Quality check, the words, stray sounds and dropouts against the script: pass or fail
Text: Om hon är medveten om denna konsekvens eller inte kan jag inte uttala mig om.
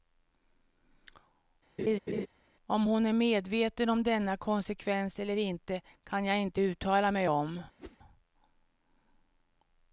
fail